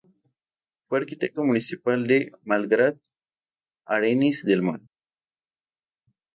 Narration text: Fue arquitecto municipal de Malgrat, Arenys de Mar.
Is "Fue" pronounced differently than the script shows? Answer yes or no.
no